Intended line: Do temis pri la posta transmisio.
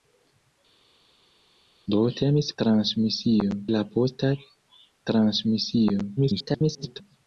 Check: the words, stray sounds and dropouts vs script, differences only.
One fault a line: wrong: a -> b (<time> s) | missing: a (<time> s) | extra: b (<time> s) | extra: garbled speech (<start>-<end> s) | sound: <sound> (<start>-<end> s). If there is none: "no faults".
wrong: pri -> transmisio (2.6 s)
extra: garbled speech (6.2-7.0 s)